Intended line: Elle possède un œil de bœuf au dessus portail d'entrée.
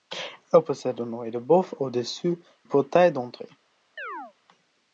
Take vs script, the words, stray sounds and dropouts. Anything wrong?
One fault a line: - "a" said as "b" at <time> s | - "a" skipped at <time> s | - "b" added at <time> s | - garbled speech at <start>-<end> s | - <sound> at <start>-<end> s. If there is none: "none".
- chirp at 4.0-4.3 s